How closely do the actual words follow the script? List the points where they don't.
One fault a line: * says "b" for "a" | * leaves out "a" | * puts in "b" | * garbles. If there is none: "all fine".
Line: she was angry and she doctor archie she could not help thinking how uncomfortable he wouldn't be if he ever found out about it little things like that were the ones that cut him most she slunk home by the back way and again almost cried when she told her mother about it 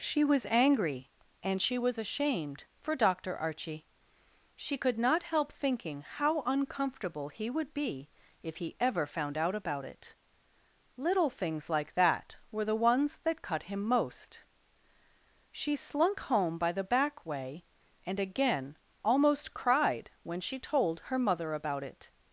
* puts in "was ashamed for"
* says "would" for "wouldn't"